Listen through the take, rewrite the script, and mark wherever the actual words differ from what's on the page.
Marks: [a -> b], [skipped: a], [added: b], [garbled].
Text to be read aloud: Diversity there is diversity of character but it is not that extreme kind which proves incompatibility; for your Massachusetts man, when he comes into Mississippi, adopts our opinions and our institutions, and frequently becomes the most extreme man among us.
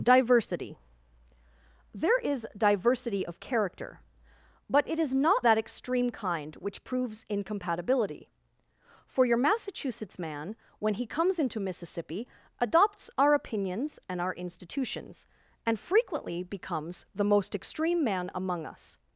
Diversity there is diversity of character but it is not that extreme kind which proves incompatibility; for your Massachusetts man, when he comes into Mississippi, adopts our opinions and our institutions, and frequently becomes the most extreme man among us.